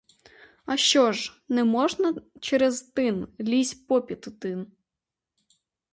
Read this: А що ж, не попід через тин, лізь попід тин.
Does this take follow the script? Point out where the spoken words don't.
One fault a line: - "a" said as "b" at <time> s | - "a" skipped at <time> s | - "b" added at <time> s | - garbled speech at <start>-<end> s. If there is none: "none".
- "попід" said as "можна" at 1.6 s